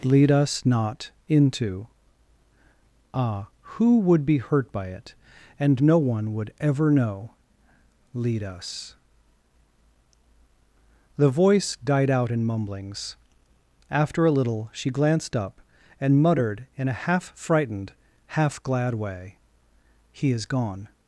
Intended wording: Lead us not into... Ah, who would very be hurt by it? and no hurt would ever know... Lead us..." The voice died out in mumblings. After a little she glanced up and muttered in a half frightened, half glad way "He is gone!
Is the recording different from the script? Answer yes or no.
yes